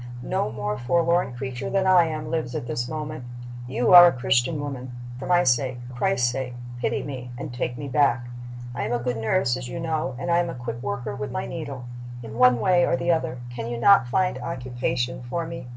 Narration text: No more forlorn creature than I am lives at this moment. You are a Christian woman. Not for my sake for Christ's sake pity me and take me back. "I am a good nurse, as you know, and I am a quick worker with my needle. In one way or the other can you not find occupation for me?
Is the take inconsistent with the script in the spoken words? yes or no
yes